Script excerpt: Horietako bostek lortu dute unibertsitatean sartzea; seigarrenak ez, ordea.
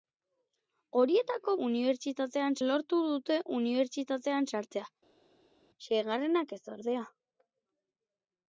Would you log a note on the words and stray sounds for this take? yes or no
yes